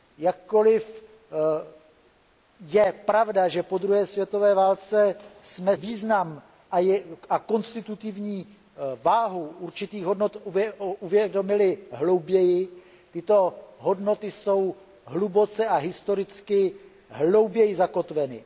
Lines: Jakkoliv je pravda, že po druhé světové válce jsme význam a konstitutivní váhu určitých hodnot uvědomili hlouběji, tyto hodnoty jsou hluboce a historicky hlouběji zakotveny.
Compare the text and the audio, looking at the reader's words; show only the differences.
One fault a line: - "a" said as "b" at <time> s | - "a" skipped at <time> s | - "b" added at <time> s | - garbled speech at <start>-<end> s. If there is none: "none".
none